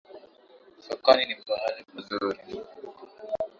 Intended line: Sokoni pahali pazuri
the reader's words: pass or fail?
fail